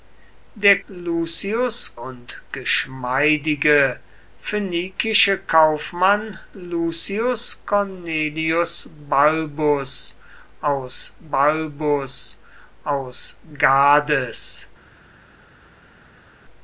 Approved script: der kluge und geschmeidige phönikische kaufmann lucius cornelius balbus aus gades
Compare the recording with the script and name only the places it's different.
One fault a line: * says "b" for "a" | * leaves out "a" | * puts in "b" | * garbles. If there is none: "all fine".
* says "lucius" for "kluge"
* puts in "balbus aus"